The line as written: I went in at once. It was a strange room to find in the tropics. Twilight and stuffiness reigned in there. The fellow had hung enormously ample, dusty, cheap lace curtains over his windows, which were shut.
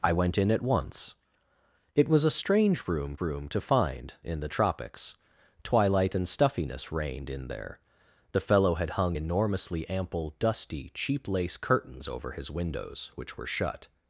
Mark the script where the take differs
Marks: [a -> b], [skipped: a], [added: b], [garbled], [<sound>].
I went in at once. It was a strange room [added: room] to find in the tropics. Twilight and stuffiness reigned in there. The fellow had hung enormously ample, dusty, cheap lace curtains over his windows, which were shut.